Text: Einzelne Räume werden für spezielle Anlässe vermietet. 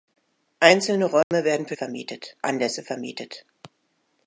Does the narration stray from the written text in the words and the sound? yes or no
yes